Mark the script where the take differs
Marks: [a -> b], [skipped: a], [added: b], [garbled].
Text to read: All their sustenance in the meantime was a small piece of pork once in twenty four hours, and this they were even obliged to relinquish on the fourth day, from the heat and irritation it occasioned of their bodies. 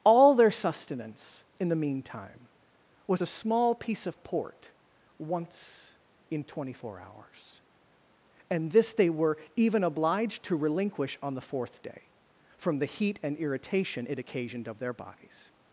All their sustenance in the meantime was a small piece of [pork -> port] once in twenty four hours, and this they were even obliged to relinquish on the fourth day, from the heat and irritation it occasioned of their bodies.